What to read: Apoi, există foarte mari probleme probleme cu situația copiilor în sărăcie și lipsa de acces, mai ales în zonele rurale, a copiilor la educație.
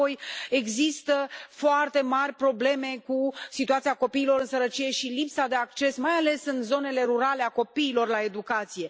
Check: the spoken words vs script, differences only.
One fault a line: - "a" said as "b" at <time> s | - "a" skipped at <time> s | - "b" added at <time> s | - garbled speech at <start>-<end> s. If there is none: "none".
- "probleme" skipped at 3.0 s